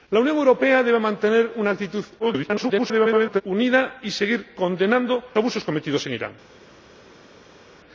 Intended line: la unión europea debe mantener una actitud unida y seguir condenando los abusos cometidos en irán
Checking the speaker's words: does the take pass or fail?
fail